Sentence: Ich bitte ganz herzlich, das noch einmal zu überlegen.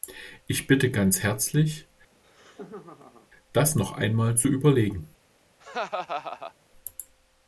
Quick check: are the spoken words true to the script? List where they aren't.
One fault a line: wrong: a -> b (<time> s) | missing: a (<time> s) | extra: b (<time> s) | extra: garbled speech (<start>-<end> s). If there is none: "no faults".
no faults